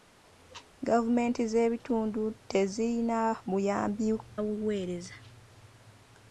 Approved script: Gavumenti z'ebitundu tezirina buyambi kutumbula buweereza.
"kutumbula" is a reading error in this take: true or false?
true